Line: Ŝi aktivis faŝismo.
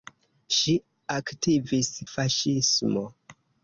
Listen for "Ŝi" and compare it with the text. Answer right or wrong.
right